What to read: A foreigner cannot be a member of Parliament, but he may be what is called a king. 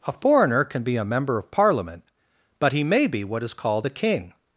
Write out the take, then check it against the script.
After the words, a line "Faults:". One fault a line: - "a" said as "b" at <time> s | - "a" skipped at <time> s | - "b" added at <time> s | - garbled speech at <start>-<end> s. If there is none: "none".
A foreigner can be a member of Parliament, but he may be what is called a king.
Faults:
- "cannot" said as "can" at 0.6 s